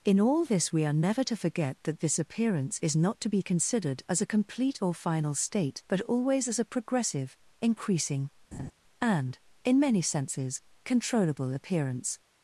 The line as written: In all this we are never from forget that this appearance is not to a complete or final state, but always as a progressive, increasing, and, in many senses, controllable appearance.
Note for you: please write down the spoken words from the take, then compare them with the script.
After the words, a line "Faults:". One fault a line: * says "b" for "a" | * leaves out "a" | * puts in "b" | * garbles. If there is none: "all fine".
In all this we are never to forget that this appearance is not to be considered as a complete or final state, but always as a progressive, increasing, and, in many senses, controllable appearance.
Faults:
* says "to" for "from"
* puts in "be considered as"